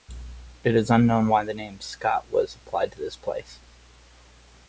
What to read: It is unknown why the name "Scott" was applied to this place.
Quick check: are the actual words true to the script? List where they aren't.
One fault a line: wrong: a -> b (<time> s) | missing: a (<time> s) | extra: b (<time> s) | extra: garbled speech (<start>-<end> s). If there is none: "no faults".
no faults